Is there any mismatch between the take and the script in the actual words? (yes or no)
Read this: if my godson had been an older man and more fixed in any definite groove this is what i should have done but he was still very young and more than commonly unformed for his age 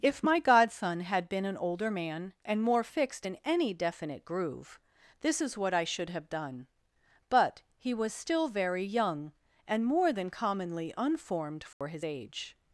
no